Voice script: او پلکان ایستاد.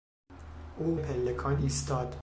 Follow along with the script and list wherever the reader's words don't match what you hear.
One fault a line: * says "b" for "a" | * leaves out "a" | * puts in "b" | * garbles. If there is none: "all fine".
all fine